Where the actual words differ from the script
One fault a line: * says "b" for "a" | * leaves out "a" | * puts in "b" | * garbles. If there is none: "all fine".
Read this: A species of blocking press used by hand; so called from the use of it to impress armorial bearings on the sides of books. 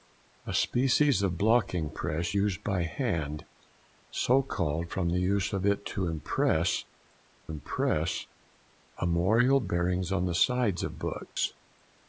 * puts in "impress"